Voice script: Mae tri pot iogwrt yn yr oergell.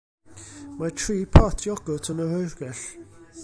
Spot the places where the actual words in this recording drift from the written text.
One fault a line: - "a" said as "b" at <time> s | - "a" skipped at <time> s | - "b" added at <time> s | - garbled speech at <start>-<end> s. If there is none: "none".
none